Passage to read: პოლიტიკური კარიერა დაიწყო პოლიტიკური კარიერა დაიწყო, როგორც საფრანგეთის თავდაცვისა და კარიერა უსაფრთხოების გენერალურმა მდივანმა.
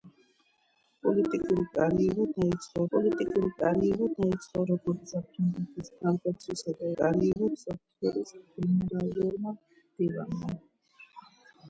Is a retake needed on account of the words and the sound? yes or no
yes